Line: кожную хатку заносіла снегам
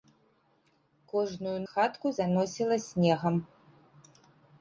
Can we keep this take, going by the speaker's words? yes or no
yes